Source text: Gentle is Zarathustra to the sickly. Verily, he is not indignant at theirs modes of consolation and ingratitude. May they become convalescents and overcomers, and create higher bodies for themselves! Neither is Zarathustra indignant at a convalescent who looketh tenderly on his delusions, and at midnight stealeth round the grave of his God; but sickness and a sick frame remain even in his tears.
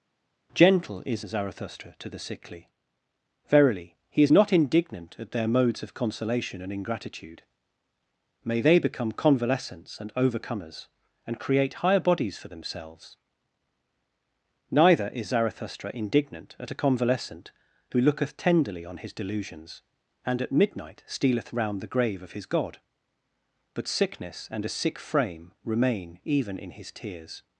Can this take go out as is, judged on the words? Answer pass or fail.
fail